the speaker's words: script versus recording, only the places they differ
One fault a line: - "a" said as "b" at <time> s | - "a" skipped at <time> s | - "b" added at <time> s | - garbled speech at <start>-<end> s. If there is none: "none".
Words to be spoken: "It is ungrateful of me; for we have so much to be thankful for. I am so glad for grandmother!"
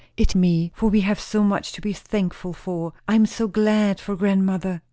- "is ungrateful of" skipped at 0.3 s